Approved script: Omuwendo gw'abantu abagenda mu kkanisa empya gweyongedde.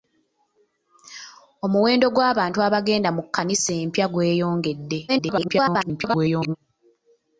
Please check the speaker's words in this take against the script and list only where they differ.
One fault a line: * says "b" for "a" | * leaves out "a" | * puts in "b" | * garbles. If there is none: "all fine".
* garbles